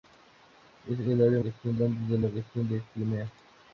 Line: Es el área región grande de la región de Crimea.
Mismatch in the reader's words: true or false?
false